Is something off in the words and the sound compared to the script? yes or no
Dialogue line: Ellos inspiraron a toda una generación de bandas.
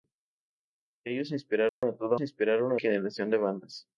yes